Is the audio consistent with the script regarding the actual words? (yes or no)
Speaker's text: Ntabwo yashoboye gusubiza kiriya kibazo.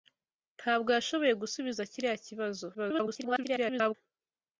no